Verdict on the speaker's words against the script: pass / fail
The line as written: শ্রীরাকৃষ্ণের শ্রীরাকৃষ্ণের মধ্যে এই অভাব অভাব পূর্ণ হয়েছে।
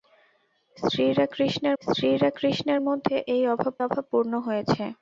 pass